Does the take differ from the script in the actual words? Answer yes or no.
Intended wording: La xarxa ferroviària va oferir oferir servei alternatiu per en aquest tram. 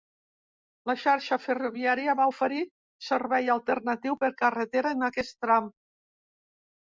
yes